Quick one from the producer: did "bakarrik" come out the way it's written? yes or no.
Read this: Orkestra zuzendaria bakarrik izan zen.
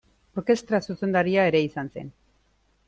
no